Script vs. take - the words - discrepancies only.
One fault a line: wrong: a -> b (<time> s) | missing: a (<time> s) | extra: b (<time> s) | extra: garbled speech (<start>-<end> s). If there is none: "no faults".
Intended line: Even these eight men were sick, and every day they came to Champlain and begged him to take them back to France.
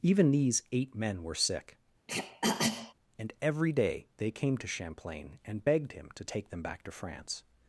no faults